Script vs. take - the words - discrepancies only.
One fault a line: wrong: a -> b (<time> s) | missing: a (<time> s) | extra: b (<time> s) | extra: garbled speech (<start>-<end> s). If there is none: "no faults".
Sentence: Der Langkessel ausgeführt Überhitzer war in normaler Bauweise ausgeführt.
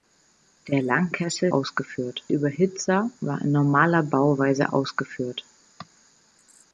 no faults